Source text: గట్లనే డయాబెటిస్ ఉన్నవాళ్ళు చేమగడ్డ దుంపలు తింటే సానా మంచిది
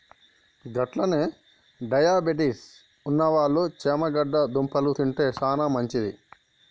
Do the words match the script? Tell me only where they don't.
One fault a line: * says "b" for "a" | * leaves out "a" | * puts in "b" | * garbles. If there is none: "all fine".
all fine